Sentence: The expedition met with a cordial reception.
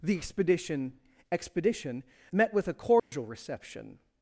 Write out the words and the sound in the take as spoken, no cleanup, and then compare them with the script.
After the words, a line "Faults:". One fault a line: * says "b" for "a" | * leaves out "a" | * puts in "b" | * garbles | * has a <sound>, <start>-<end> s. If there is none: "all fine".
The expedition expedition met with a cordial reception.
Faults:
* puts in "expedition"
* has a dropout, 3.0-3.1 s